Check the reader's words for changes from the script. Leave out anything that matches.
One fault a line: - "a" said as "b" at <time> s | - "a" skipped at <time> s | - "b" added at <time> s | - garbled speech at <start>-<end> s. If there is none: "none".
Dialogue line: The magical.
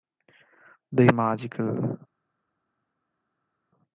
none